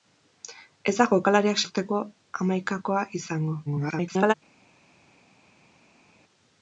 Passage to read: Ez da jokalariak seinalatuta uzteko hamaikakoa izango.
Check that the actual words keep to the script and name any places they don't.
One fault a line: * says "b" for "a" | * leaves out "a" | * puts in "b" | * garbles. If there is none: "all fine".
* leaves out "seinalatuta"
* garbles